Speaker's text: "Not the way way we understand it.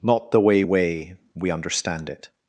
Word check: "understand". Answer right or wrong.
right